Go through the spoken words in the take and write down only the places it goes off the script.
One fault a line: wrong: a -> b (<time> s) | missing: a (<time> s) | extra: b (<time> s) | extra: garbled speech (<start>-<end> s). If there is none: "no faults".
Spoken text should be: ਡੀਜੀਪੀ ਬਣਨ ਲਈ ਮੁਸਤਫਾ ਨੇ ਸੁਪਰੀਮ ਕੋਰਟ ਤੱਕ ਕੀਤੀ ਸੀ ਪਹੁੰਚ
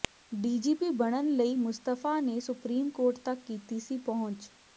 no faults